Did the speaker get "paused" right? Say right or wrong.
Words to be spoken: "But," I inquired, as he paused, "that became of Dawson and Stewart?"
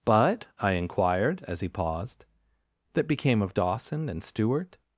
right